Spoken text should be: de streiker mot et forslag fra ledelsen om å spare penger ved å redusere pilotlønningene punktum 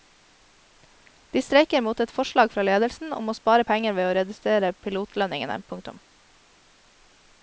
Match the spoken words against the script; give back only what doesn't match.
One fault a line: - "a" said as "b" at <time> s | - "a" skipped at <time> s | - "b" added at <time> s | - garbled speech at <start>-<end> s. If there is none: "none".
none